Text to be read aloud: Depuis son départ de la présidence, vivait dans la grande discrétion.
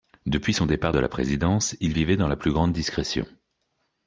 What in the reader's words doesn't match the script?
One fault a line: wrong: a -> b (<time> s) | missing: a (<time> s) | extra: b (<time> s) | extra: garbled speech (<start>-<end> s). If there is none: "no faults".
extra: il (1.8 s)
extra: plus (2.4 s)